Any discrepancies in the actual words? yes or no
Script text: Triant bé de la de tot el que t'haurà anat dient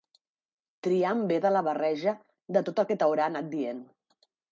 yes